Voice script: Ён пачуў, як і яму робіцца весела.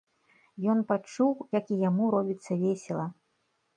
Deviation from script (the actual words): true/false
false